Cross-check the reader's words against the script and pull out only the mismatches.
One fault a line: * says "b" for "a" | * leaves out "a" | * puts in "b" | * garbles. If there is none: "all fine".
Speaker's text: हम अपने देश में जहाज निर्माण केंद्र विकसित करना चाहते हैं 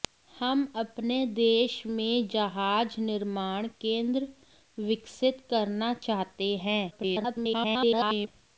* garbles